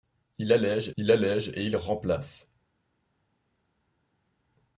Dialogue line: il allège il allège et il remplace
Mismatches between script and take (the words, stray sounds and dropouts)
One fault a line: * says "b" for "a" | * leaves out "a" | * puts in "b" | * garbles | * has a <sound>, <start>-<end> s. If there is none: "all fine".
all fine